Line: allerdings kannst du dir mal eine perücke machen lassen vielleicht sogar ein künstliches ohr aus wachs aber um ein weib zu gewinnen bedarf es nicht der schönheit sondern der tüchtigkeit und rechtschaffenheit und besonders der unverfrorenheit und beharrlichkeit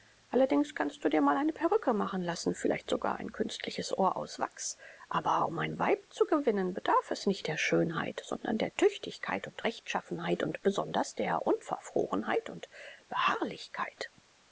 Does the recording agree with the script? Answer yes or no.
yes